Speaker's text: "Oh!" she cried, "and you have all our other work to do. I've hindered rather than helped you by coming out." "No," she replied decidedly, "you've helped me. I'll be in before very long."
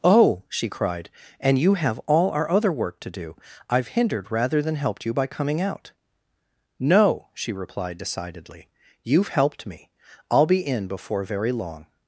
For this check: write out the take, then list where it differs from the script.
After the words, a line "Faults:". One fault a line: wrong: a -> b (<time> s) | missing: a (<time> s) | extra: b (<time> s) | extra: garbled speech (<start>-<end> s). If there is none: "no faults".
"Oh!" she cried, "and you have all our other work to do. I've hindered rather than helped you by coming out." "No," she replied decidedly, "you've helped me. I'll be in before very long."
Faults:
no faults